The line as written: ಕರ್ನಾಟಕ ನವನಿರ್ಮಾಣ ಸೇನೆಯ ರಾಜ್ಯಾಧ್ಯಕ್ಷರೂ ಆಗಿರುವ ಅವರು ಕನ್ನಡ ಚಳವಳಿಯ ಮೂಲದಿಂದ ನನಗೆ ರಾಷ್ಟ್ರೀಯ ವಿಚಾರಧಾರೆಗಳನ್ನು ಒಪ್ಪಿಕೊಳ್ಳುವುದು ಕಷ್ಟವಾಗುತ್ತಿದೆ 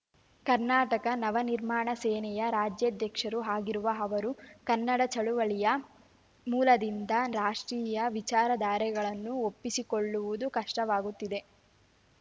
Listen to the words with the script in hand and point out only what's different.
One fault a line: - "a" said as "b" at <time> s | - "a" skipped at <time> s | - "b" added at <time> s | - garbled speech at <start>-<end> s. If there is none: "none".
- "ನನಗೆ" skipped at 7.1 s